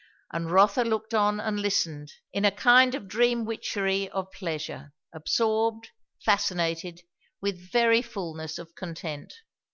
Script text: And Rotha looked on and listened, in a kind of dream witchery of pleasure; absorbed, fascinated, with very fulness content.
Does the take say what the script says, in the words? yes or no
no